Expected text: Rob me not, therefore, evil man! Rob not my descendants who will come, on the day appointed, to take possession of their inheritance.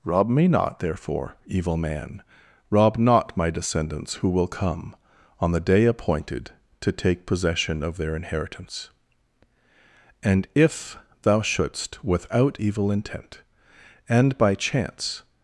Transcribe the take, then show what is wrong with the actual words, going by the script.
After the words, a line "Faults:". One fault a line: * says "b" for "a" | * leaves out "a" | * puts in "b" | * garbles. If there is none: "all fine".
Rob me not, therefore, evil man! Rob not my descendants who will come, on the day appointed, to take possession of their inheritance. And if thou shouldst, without evil intent, and by chance
Faults:
* puts in "And if thou shouldst without evil intent and by chance"